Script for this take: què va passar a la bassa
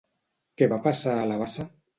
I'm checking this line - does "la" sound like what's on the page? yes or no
yes